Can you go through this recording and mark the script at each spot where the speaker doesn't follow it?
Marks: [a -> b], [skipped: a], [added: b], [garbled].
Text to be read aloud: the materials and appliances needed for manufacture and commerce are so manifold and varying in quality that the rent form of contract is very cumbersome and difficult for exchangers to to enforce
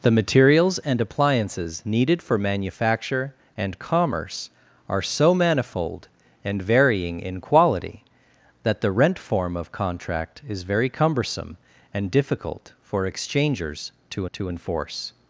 the materials and appliances needed for manufacture and commerce are so manifold and varying in quality that the rent form of contract is very cumbersome and difficult for exchangers to to enforce